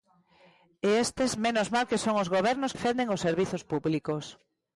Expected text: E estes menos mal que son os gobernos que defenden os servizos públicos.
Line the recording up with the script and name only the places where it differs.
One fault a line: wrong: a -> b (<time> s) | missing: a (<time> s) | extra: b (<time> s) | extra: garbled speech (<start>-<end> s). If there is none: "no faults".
missing: que (2.7 s)